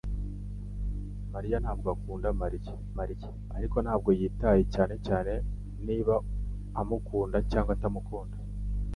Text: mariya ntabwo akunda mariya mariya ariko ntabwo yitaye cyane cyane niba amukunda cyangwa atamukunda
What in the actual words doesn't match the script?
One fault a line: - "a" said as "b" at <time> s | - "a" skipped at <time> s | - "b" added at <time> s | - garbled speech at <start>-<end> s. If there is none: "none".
none